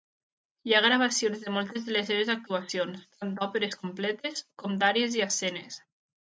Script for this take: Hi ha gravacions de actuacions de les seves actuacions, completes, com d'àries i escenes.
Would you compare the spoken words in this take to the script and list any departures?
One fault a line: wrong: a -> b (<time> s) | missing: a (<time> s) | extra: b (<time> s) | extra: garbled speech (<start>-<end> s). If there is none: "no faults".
wrong: actuacions -> moltes (1.6 s)
extra: tant d'òperes (3.2 s)